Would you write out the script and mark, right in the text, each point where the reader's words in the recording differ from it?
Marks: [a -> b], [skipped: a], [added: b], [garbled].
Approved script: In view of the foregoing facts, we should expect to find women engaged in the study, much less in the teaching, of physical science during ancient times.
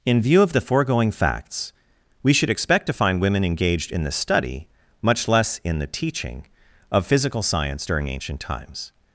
In view of the foregoing facts, we should expect to find women engaged in the study, much less in the teaching, of physical science during ancient times.